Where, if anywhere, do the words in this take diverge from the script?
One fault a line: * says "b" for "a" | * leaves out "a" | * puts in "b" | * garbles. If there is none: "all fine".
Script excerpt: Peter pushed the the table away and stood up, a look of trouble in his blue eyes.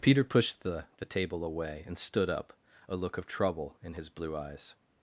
all fine